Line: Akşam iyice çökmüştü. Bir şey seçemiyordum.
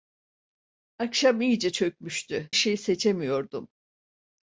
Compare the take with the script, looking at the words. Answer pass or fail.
fail